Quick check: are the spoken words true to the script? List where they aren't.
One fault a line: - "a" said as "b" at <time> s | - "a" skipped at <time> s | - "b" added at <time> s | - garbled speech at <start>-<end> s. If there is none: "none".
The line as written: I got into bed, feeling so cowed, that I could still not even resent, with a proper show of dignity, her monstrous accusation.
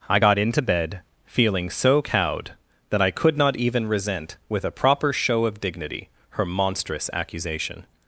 - "still" skipped at 3.4 s